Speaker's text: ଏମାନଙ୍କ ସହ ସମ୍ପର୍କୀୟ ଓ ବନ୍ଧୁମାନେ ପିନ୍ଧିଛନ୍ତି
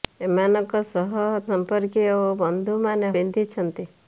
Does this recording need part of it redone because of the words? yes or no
no